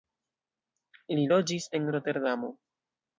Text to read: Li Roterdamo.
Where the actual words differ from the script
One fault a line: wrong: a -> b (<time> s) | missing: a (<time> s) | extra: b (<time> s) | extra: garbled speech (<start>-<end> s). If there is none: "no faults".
extra: loĝis en (1.3 s)